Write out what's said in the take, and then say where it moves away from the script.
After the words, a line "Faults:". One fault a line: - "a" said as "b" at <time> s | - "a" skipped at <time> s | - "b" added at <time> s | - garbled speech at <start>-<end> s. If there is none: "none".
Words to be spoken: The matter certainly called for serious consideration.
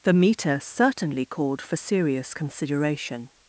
The meter certainly called for serious consideration.
Faults:
- "matter" said as "meter" at 0.1 s